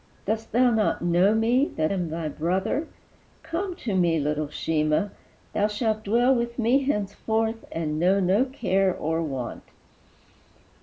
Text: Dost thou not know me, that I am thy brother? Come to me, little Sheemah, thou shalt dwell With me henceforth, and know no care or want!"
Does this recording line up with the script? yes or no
no